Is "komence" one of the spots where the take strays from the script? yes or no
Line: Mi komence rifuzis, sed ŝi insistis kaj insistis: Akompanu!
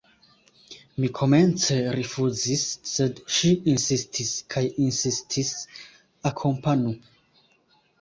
no